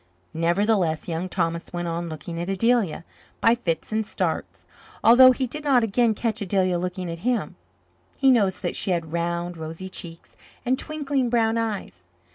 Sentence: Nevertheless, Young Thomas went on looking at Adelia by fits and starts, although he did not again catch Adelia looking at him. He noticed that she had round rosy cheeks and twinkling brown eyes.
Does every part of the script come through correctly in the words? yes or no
yes